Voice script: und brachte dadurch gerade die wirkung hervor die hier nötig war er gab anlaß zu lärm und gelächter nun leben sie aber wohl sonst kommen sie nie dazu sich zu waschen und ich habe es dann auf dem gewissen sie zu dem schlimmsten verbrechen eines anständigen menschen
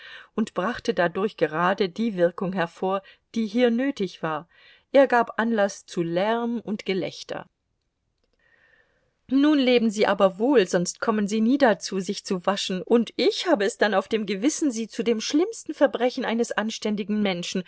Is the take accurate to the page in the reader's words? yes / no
yes